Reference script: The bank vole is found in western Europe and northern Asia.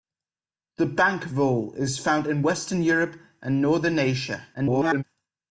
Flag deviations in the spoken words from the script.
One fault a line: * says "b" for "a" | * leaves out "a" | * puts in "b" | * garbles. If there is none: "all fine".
* garbles